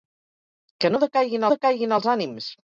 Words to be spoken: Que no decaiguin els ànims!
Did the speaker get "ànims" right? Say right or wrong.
right